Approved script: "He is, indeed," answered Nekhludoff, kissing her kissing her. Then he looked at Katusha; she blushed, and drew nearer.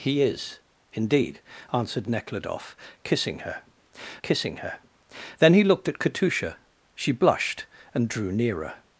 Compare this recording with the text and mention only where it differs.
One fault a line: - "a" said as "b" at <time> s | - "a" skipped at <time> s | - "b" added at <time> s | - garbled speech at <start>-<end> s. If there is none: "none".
none